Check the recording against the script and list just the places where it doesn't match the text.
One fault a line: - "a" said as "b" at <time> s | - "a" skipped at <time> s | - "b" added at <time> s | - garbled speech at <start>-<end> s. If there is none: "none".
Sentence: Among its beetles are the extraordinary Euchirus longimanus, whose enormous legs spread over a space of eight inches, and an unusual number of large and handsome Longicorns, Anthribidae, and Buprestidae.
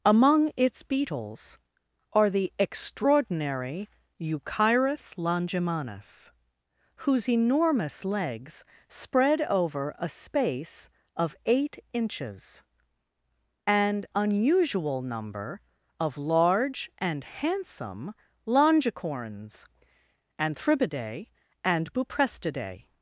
- "an" skipped at 14.1 s